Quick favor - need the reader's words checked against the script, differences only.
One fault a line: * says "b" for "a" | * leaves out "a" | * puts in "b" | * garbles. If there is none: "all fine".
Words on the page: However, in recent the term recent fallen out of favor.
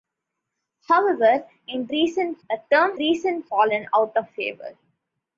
all fine